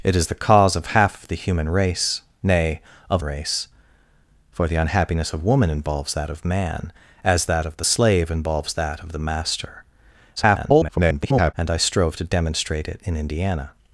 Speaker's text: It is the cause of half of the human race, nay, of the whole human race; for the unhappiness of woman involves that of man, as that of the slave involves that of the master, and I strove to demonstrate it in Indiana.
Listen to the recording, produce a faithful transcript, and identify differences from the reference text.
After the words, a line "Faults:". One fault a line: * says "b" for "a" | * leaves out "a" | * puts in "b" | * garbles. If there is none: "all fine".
It is the cause of half of the human race, nay, of race; for the unhappiness of woman involves that of man, as that of the slave involves that of the master, [garbled] and I strove to demonstrate it in Indiana.
Faults:
* leaves out "the whole human"
* garbles